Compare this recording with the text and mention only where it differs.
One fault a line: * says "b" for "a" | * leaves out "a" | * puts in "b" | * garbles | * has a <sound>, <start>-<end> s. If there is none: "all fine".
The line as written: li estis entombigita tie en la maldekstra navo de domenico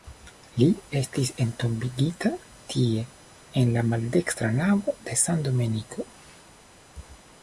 * puts in "san"